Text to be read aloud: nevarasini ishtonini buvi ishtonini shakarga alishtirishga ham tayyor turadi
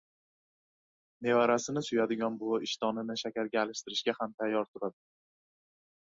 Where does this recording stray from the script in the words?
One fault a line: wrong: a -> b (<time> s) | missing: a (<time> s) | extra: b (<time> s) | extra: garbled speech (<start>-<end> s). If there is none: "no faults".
wrong: ishtonini -> suyadigan (1.9 s)